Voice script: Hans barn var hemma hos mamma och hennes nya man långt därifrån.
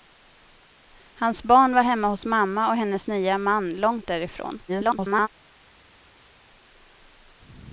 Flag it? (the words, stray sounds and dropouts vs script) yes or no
yes